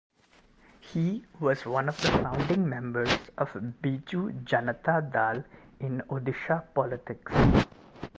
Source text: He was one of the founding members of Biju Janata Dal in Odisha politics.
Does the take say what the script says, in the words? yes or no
yes